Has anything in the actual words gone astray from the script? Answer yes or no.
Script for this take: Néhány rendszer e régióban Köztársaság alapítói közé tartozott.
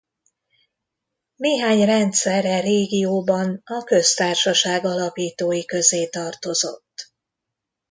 yes